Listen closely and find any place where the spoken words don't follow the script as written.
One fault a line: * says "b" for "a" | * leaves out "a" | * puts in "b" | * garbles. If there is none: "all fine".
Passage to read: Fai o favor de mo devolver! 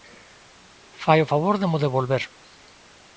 all fine